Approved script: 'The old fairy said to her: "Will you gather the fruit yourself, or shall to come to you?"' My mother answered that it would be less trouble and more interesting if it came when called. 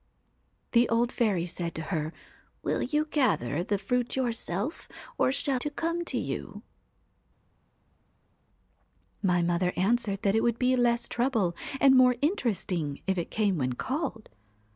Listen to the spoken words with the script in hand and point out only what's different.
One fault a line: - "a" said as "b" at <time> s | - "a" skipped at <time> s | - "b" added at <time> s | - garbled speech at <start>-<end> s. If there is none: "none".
none